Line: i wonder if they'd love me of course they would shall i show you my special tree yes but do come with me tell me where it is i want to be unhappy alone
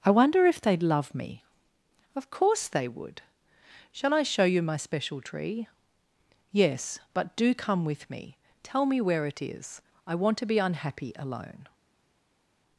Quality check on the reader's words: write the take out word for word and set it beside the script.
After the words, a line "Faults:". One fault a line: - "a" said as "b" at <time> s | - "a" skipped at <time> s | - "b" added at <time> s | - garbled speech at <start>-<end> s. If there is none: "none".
i wonder if they'd love me of course they would shall i show you my special tree yes but do come with me tell me where it is i want to be unhappy alone
Faults:
none